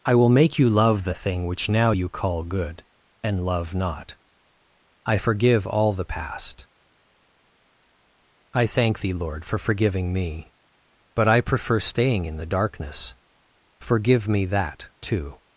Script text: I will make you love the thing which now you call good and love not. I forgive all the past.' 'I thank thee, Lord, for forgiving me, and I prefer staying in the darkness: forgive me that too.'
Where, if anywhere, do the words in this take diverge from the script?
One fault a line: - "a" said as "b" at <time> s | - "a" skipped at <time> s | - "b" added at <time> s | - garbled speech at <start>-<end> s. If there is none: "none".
- "and" said as "but" at 11.1 s